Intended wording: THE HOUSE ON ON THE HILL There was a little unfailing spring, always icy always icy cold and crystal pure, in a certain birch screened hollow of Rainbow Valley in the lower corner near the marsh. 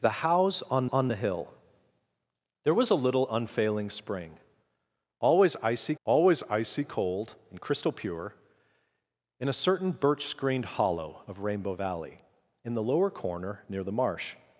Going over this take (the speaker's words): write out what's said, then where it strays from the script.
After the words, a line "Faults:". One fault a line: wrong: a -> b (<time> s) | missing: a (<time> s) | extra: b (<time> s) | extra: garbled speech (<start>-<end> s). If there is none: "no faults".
THE HOUSE ON ON THE HILL There was a little unfailing spring, always icy always icy cold and crystal pure, in a certain birch screened hollow of Rainbow Valley in the lower corner near the marsh.
Faults:
no faults